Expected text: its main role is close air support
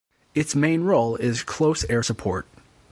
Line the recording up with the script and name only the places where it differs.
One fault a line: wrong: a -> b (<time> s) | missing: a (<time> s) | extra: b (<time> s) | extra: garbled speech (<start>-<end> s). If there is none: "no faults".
no faults